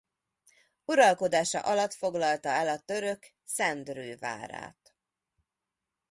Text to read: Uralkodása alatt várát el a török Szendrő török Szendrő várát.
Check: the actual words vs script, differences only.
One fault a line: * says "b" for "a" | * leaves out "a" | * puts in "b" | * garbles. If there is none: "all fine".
* says "foglalta" for "várát"
* leaves out "török Szendrő"